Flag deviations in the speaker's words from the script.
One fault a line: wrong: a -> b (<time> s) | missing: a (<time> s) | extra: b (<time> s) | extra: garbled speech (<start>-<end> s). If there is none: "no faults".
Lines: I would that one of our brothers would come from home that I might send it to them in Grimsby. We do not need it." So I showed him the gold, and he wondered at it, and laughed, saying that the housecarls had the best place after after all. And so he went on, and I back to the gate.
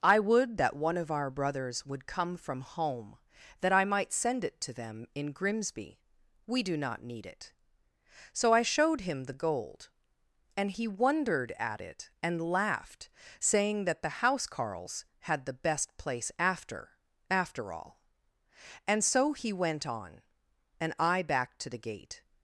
no faults